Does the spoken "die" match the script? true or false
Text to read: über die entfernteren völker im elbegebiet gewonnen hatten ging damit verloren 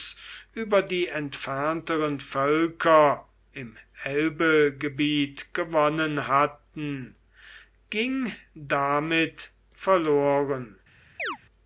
true